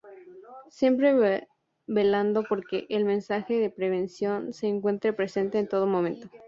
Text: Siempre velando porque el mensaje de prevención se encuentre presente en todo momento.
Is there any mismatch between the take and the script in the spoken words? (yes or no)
no